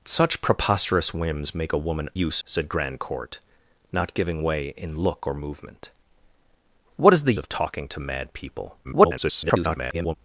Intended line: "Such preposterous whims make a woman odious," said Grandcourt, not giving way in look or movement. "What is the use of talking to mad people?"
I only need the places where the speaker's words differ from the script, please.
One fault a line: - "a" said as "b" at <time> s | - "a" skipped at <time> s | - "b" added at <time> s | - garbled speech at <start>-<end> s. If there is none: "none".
- "odious" said as "use" at 2.1 s
- "use" skipped at 7.3 s
- garbled speech at 8.8-10.2 s